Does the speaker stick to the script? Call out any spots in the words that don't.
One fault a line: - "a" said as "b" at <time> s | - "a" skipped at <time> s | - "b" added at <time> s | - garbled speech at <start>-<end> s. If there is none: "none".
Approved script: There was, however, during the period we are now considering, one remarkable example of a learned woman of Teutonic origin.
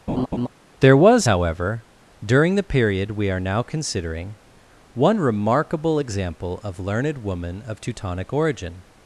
- "a" skipped at 6.8 s